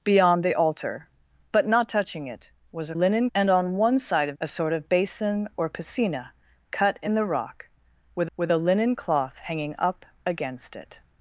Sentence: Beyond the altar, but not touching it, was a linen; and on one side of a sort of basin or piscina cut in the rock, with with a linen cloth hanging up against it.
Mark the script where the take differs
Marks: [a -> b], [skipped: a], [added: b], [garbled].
Beyond the altar, but not touching it, was a linen; and on one side of a sort of basin or piscina cut in the rock, with with a linen cloth hanging up against it.